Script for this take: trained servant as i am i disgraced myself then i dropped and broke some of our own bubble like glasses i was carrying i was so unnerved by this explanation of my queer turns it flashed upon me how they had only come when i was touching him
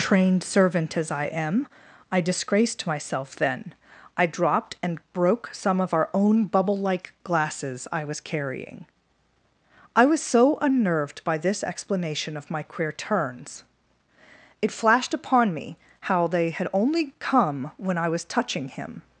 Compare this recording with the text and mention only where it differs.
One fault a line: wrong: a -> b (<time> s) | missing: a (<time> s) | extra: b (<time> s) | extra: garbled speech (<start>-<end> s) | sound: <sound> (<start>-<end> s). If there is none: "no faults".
no faults